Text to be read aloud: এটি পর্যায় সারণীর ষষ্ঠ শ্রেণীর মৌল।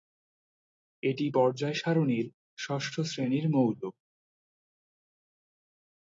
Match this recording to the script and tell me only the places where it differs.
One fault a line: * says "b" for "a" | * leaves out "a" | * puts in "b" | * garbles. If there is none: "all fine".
all fine